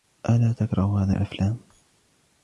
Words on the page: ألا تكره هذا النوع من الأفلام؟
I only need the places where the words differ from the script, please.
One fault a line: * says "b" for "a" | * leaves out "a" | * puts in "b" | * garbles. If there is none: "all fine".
* leaves out "النوع من"